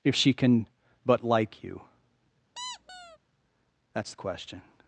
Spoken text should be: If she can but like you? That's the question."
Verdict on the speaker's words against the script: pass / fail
pass